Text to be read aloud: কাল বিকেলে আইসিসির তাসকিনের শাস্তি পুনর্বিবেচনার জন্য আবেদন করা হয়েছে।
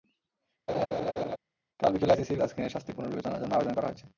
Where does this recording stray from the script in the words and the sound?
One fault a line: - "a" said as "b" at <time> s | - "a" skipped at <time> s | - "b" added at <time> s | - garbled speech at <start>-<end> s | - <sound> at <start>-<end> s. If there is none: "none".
- laugh at 0.7-1.4 s